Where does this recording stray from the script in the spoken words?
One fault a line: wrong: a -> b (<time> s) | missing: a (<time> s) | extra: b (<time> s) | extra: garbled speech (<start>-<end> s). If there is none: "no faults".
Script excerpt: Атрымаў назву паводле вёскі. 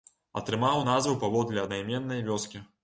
extra: аднайменнай (1.6 s)